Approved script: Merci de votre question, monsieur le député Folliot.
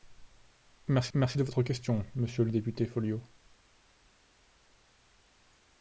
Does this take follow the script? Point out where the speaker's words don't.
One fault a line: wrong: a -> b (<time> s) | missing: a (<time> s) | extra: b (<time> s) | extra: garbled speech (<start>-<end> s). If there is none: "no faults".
extra: merci (1.2 s)